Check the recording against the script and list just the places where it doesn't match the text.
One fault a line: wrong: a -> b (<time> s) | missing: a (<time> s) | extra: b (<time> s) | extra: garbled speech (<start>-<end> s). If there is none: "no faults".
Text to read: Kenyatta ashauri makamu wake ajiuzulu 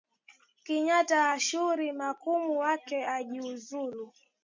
no faults